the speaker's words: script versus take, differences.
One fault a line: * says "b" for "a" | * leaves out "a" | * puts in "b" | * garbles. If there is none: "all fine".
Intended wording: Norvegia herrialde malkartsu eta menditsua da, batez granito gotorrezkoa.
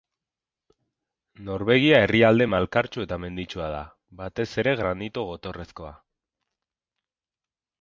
* puts in "ere"